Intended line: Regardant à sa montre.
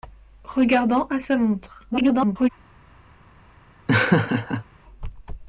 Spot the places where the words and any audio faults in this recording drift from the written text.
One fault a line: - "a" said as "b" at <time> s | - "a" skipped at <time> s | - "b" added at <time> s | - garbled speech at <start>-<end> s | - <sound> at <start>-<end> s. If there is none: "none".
- garbled speech at 1.9-2.5 s
- laugh at 3.9-4.6 s